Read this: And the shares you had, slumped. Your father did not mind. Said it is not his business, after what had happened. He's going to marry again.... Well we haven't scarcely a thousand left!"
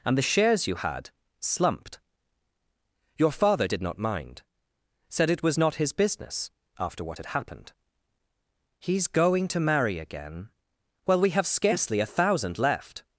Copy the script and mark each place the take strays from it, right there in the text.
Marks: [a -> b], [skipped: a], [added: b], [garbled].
And the shares you had, slumped. Your father did not mind. Said it [is -> was] not his business, after what had happened. He's going to marry again.... Well we [haven't -> have] scarcely a thousand left!"